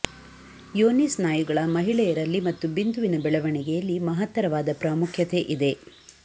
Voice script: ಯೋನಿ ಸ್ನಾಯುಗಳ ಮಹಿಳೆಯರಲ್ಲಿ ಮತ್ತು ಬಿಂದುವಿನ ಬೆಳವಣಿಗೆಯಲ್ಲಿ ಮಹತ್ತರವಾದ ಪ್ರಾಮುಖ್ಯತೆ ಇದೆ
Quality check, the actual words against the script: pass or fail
pass